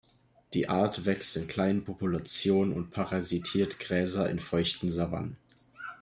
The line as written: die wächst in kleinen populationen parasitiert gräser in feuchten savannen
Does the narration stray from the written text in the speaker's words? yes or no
yes